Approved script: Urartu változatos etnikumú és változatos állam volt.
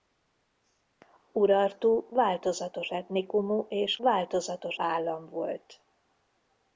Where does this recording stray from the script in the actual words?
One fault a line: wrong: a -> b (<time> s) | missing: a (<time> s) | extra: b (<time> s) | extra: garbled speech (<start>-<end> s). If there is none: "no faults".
no faults